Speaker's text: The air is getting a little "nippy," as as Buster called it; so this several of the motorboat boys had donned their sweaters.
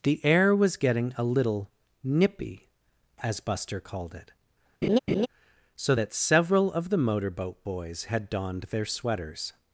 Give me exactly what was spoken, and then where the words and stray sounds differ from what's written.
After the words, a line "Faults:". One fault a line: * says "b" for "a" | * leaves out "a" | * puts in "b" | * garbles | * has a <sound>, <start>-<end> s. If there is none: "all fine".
The air was getting a little "nippy," as Buster called it; so that several of the motorboat boys had donned their sweaters.
Faults:
* says "was" for "is"
* leaves out "as"
* has a laugh, 4.8-5.3 s
* says "that" for "this"